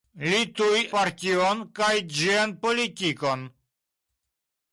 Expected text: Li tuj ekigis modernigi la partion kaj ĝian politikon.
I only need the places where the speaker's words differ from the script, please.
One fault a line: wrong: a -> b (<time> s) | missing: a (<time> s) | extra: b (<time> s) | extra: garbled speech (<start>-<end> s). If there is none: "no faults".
missing: ekigis modernigi la (0.8 s)